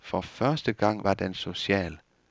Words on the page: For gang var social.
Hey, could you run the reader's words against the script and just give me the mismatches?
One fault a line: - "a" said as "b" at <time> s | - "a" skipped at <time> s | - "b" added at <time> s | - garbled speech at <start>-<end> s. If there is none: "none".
- "første" added at 0.2 s
- "den" added at 1.1 s